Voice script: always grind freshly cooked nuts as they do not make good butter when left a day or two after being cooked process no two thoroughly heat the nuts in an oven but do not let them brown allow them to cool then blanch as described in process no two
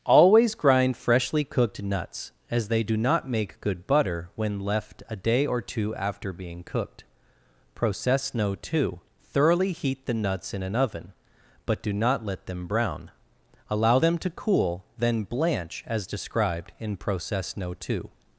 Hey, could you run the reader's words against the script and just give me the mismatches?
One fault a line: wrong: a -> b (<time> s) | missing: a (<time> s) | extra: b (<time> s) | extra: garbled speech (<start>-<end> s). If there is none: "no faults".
no faults